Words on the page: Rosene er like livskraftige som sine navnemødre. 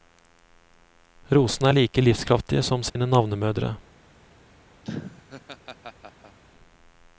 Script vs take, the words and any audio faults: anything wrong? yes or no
yes